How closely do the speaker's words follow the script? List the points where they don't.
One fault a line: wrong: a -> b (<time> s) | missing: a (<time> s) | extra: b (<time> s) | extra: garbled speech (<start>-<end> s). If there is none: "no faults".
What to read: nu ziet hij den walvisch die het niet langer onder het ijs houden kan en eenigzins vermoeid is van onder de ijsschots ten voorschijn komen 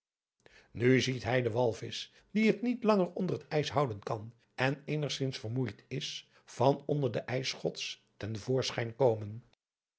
no faults